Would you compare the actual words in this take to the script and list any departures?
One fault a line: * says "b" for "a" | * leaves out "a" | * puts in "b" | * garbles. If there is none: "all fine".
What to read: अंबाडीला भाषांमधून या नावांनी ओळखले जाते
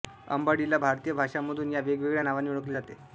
* puts in "भारतीय"
* puts in "वेगवेगळ्या"